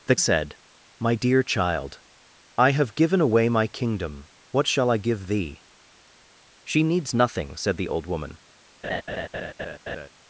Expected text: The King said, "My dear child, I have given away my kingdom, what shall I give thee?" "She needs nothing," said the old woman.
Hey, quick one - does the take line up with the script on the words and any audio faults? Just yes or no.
no